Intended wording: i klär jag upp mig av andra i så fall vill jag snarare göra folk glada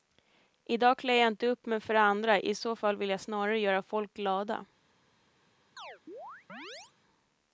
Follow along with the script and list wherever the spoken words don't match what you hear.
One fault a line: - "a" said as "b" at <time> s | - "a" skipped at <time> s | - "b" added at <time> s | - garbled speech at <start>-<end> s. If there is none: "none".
- "dag" added at 0.8 s
- "inte" added at 1.3 s
- "av" said as "för" at 1.8 s